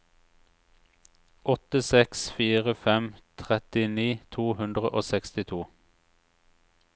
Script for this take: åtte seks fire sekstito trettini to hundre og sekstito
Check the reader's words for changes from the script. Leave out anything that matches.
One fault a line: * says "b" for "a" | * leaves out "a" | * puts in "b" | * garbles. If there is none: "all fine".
* says "fem" for "sekstito"